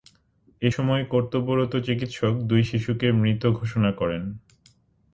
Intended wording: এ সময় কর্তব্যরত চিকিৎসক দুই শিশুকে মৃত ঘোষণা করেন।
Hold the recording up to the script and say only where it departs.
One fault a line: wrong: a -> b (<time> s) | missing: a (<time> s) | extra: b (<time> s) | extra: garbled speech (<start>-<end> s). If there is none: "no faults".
no faults